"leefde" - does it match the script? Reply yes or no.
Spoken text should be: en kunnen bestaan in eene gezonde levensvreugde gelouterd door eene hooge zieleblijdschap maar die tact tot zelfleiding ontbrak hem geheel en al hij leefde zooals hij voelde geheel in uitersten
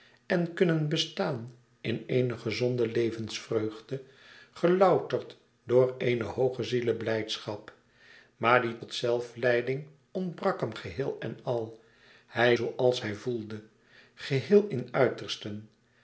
no